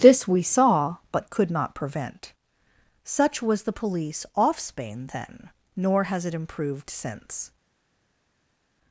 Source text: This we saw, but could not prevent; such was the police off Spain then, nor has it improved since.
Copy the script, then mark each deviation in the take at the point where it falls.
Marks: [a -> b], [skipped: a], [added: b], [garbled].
This we saw, but could not prevent; such was the police off Spain then, nor has it improved since.